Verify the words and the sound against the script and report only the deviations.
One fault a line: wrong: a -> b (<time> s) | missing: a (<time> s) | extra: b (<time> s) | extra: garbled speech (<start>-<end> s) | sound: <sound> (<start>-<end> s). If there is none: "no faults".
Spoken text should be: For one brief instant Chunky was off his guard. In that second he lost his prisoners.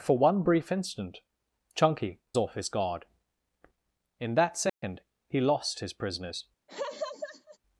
missing: was (2.2 s)
sound: dropout (4.7-4.8 s)
sound: laugh (6.7-7.6 s)